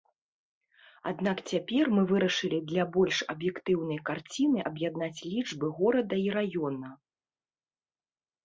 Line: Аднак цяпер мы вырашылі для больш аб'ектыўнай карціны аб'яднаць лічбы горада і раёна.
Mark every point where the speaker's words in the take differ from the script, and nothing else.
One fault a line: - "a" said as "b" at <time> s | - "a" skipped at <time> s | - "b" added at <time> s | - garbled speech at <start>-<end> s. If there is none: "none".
none